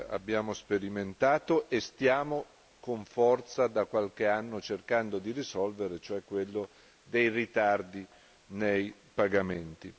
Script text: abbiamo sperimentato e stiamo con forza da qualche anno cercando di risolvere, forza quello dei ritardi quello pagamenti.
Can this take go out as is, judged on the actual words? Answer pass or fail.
fail